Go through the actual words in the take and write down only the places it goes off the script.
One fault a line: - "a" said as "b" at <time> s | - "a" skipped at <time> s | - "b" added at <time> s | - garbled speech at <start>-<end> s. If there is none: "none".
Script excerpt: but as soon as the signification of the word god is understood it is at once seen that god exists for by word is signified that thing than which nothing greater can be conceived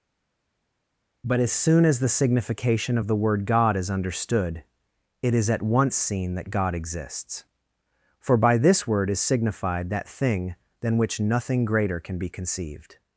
- "this" added at 8.6 s